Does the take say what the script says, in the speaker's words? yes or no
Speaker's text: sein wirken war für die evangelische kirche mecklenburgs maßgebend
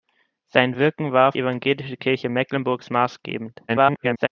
no